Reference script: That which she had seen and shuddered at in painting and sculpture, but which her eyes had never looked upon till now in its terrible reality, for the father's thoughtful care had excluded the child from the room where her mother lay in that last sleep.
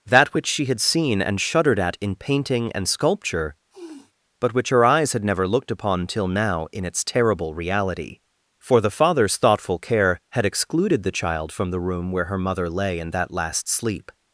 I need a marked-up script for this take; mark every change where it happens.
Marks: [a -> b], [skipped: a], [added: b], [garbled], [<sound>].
That which she had seen and shuddered at in painting and sculpture, [sniff] but which her eyes had never looked upon till now in its terrible reality, for the father's thoughtful care had excluded the child from the room where her mother lay in that last sleep.